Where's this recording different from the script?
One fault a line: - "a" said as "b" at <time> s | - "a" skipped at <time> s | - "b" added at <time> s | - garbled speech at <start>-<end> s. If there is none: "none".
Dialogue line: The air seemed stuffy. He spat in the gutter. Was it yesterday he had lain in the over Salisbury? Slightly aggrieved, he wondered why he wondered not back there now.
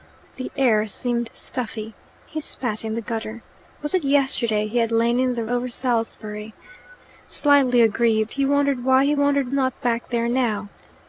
none